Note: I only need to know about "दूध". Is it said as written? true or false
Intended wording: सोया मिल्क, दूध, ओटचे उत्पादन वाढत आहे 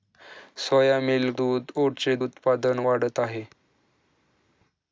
true